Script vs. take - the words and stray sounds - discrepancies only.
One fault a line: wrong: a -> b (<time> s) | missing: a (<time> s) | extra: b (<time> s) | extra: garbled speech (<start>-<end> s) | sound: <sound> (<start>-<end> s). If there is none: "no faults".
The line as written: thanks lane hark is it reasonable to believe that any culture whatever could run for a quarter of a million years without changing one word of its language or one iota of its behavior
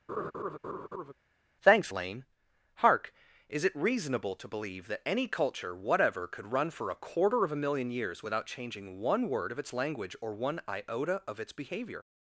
sound: laugh (0.1-1.1 s)